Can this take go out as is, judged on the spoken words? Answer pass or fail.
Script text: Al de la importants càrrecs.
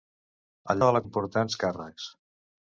pass